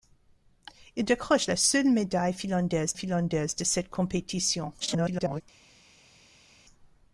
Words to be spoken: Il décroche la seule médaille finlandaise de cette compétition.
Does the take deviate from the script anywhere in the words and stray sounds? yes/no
yes